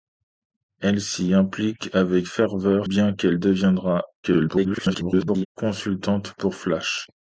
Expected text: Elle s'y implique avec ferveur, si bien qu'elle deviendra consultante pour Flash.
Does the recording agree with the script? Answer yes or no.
no